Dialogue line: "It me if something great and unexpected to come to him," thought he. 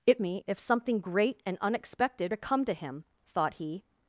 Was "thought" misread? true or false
false